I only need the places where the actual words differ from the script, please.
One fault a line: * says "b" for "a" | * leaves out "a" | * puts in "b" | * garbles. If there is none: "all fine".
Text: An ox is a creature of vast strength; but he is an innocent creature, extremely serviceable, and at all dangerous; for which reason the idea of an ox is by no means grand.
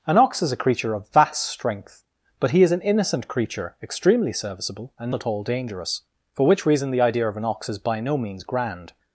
all fine